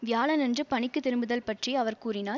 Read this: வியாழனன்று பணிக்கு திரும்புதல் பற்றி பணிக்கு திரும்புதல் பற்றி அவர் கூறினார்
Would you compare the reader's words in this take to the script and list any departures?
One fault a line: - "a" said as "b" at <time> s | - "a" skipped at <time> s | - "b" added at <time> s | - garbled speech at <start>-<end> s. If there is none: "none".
- "பணிக்கு திரும்புதல் பற்றி" skipped at 1.7 s